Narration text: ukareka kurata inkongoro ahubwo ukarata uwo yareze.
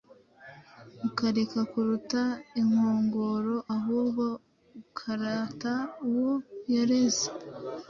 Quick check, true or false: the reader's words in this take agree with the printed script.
true